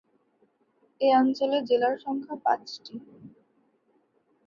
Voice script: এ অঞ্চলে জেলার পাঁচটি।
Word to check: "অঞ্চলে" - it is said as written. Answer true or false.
true